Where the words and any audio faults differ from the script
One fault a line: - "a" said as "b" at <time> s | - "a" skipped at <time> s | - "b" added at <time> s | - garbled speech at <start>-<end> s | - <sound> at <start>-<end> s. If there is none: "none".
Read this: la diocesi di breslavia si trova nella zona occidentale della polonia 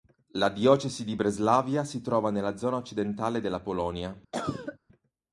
- cough at 4.3-4.8 s